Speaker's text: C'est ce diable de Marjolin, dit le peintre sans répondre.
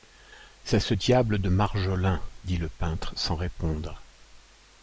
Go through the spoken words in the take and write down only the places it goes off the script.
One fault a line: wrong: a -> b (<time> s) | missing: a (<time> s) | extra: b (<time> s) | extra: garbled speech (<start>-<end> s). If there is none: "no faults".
no faults